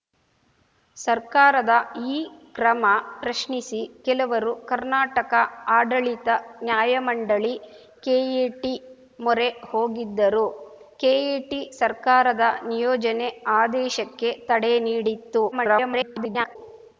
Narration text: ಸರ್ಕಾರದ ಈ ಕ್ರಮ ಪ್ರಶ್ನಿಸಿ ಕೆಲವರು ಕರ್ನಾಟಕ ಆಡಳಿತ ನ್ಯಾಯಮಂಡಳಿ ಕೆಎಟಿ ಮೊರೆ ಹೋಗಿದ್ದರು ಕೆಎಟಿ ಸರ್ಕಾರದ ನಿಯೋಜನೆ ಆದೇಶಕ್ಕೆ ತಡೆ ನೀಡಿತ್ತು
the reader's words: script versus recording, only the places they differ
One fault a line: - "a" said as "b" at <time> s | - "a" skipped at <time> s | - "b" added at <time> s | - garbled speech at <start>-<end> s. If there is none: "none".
- garbled speech at 15.5-16.6 s